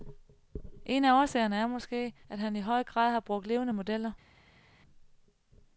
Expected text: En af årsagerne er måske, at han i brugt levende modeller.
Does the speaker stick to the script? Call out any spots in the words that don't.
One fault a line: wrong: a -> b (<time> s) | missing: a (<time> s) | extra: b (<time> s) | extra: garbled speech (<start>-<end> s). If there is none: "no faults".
extra: høj grad har (2.6 s)